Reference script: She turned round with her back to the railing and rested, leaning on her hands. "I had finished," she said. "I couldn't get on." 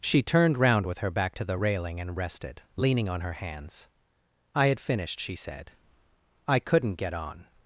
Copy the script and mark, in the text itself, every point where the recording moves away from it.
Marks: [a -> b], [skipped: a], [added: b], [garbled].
She turned round with her back to the railing and rested, leaning on her hands. "I had finished," she said. "I couldn't get on."